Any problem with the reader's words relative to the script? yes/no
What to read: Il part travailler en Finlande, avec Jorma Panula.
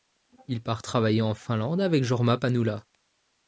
no